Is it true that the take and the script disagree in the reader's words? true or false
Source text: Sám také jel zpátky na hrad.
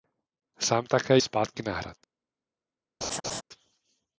true